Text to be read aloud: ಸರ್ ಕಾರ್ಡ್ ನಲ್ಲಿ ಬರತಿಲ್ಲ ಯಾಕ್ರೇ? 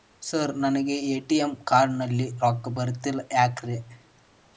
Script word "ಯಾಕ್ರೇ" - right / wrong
right